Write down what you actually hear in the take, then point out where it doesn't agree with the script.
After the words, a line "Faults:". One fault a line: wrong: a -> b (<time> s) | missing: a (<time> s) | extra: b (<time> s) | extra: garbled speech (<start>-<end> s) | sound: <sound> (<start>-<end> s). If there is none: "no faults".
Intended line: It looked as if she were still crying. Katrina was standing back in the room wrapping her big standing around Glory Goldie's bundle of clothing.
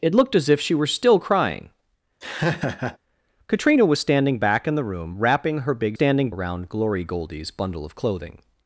It looked as if she were still crying. Katrina was standing back in the room wrapping her big standing around Glory Goldie's bundle of clothing.
Faults:
sound: laugh (2.2-3.0 s)